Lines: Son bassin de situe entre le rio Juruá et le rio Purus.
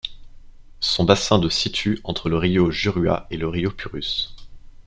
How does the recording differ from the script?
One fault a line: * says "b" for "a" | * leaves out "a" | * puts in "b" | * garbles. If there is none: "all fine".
all fine